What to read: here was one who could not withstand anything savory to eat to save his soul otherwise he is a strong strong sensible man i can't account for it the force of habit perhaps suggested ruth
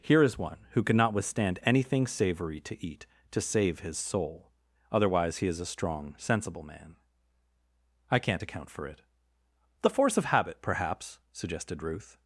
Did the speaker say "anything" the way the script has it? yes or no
yes